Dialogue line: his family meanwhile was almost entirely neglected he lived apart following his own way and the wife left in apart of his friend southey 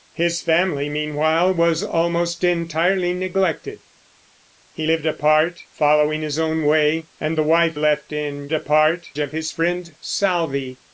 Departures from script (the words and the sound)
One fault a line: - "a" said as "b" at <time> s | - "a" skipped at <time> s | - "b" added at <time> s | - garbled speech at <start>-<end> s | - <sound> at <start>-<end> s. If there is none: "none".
none